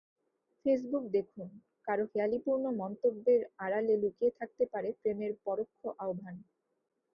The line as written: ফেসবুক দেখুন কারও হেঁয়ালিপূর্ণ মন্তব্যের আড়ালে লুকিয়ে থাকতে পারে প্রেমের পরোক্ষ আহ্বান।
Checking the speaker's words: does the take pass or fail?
pass